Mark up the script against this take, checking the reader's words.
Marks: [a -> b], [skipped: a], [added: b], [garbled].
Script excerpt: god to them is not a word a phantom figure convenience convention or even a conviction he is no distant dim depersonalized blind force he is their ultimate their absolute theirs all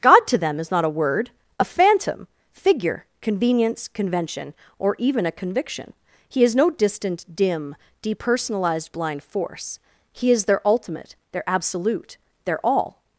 god to them is not a word a phantom figure convenience convention or even a conviction he is no distant dim depersonalized blind force he is their ultimate their absolute [theirs -> their] all